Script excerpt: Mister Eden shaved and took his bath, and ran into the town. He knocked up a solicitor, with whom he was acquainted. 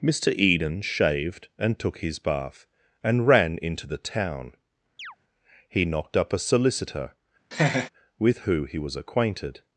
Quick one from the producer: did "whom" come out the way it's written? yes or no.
no